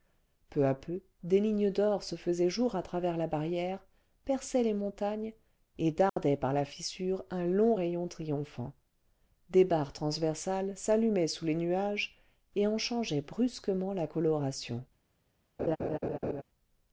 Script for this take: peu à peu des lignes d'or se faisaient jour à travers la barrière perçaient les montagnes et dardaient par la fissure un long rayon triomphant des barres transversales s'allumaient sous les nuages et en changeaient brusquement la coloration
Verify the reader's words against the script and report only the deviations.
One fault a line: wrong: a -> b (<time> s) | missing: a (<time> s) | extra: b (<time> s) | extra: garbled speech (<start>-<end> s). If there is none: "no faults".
no faults